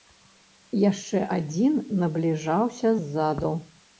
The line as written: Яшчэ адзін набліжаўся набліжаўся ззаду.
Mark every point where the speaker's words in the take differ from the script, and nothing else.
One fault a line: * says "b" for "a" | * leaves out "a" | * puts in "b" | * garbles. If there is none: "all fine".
* leaves out "набліжаўся"